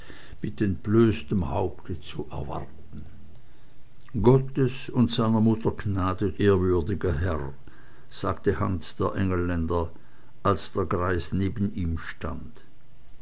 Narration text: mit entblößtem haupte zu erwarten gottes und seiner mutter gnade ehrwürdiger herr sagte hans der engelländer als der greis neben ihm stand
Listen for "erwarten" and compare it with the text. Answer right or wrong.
right